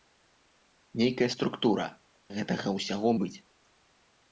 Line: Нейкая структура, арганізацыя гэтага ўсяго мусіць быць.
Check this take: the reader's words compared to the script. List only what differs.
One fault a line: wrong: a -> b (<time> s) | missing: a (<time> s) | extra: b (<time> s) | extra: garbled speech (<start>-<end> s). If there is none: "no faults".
missing: арганізацыя (1.9 s)
missing: мусіць (3.1 s)